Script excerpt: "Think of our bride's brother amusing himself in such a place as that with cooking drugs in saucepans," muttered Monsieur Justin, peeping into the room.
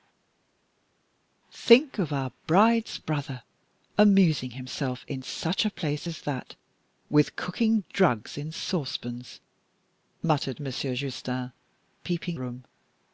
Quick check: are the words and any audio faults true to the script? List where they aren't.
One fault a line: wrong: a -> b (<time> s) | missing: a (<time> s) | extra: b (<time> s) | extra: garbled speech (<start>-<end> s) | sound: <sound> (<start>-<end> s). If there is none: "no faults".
missing: into the (12.4 s)